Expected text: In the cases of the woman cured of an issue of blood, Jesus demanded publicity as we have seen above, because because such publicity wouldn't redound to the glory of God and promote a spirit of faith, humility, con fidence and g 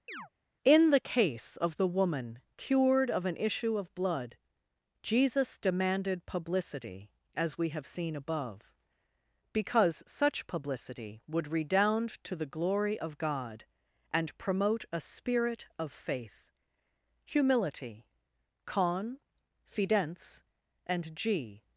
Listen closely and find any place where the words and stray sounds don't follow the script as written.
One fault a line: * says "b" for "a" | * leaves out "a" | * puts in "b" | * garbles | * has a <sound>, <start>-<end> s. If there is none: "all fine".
* has a chirp, 0.1-0.3 s
* says "case" for "cases"
* leaves out "because"
* says "would" for "wouldn't"